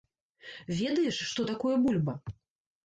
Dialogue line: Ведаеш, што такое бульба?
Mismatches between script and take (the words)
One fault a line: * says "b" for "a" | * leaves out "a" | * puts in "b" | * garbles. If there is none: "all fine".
all fine